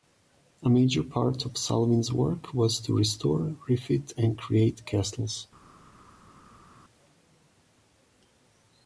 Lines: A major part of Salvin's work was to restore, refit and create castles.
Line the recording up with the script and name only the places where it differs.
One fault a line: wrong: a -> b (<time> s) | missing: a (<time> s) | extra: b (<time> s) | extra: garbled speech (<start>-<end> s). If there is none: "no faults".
no faults